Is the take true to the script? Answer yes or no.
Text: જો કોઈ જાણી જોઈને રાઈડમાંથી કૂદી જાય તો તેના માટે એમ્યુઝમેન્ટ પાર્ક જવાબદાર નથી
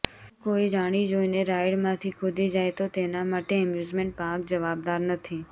yes